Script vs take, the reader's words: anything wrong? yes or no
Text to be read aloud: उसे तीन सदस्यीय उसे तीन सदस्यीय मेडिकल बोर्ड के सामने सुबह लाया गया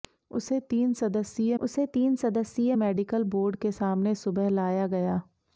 no